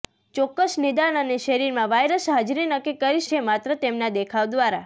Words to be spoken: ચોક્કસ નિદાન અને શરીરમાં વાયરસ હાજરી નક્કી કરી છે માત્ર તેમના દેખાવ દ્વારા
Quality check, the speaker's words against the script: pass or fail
pass